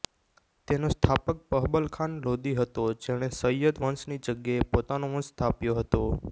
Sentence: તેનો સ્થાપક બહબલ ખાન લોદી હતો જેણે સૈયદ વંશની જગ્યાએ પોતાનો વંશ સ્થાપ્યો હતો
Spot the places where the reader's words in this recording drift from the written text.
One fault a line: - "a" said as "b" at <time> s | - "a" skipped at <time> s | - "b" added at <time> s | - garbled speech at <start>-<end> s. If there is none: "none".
none